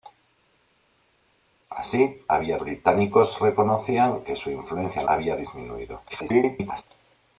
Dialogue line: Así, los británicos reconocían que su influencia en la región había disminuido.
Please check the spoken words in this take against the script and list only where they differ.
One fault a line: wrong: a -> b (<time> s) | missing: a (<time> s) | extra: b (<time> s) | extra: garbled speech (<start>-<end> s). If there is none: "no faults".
wrong: los -> había (2.3 s)
missing: la región (5.1 s)
extra: garbled speech (6.1-6.8 s)